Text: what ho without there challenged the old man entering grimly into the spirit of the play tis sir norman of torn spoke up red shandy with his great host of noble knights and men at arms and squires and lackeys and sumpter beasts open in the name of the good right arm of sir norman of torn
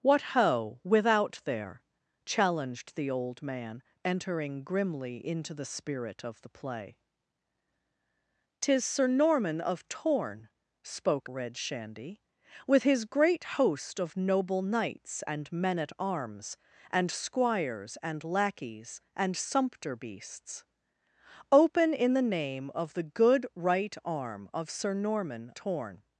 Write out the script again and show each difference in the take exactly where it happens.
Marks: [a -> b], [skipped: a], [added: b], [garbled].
what ho without there challenged the old man entering grimly into the spirit of the play tis sir norman of torn spoke [skipped: up] red shandy with his great host of noble knights and men at arms and squires and lackeys and sumpter beasts open in the name of the good right arm of sir norman [skipped: of] torn